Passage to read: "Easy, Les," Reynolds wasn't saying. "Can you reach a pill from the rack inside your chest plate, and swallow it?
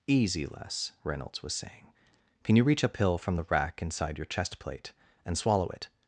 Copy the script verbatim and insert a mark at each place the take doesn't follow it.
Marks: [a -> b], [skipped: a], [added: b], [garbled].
"Easy, Les," Reynolds [wasn't -> was] saying. "Can you reach a pill from the rack inside your chest plate, and swallow it?